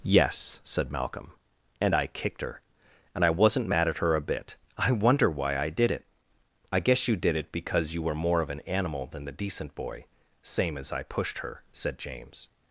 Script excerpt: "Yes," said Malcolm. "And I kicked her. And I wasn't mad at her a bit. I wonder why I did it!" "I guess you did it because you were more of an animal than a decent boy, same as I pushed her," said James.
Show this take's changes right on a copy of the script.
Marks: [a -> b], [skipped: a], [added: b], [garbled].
"Yes," said Malcolm. "And I kicked her. And I wasn't mad at her a bit. I wonder why I did it!" "I guess you did it because you were more of an animal than [a -> the] decent boy, same as I pushed her," said James.